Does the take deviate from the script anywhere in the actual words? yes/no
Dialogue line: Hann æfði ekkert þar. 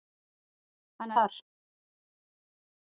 yes